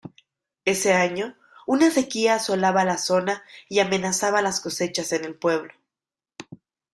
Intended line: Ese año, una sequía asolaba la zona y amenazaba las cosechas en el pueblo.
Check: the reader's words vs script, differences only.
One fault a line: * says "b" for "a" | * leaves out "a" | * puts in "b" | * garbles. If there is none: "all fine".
all fine